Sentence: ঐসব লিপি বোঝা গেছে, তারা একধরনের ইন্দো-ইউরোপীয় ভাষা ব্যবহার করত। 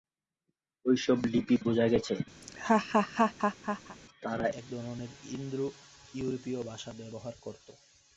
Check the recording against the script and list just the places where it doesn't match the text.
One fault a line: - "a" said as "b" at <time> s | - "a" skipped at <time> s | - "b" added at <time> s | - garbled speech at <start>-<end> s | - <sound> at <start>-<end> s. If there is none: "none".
- laugh at 2.4-4.0 s